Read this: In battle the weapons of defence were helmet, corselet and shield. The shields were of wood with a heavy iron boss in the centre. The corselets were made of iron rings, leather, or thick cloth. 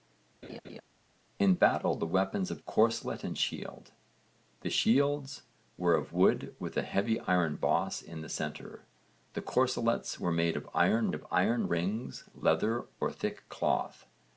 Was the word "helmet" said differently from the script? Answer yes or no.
yes